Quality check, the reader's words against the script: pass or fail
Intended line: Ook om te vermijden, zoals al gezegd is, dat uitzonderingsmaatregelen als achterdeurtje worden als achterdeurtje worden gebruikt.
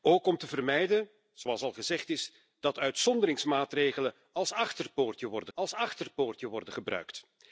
pass